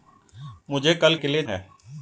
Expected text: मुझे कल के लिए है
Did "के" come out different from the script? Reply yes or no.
no